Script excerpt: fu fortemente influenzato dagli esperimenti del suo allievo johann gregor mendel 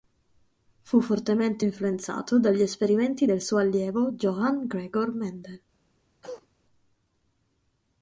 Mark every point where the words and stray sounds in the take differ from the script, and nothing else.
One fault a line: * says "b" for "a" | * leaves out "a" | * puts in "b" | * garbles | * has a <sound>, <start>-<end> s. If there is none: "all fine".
* has a cough, 6.2-6.5 s